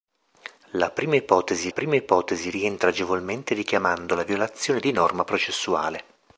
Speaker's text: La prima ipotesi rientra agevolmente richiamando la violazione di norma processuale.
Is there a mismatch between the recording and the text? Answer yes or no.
yes